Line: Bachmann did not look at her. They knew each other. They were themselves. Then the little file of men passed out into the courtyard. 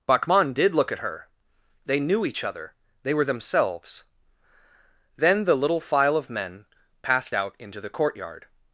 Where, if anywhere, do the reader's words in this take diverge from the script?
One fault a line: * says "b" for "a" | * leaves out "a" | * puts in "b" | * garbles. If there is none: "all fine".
* leaves out "not"